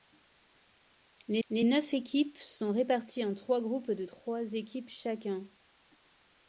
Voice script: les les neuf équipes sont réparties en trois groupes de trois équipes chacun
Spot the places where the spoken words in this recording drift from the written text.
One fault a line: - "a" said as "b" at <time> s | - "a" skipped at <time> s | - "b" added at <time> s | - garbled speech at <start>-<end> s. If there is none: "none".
none